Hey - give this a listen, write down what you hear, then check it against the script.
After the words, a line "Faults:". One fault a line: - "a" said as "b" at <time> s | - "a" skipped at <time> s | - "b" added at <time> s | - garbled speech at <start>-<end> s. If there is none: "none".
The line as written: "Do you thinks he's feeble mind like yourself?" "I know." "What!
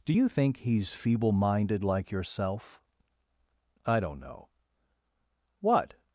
"Do you think he's feeble minded like yourself?" "I don't know." "What!
Faults:
- "thinks" said as "think" at 0.3 s
- "mind" said as "minded" at 1.3 s
- "don't" added at 4.0 s